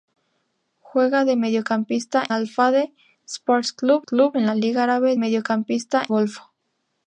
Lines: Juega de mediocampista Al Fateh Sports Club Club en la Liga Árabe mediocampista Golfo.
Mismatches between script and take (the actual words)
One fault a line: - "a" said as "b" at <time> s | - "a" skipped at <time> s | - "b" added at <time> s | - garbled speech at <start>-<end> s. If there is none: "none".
none